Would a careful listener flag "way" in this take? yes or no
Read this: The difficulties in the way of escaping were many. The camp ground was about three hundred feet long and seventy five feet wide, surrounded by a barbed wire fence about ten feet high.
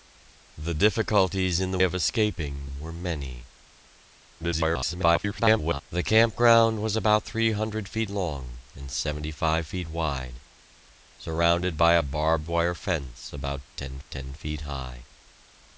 yes